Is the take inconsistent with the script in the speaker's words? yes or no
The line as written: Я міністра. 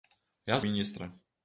no